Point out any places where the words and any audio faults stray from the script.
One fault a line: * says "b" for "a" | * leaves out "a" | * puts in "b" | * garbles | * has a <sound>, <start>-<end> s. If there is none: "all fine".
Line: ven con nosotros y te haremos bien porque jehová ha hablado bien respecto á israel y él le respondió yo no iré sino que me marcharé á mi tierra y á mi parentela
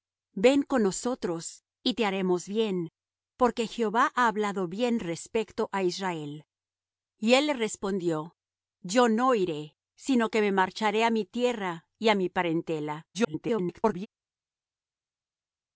* garbles